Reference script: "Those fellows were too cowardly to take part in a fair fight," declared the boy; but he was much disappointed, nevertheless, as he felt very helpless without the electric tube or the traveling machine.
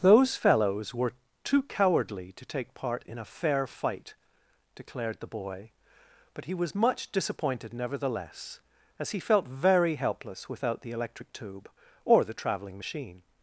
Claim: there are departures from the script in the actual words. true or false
false